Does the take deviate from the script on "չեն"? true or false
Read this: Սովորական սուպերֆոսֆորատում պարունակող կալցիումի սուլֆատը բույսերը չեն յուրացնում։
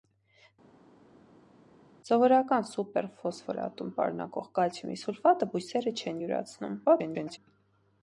false